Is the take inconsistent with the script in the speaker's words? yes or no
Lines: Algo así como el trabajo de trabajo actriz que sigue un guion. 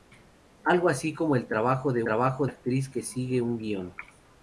no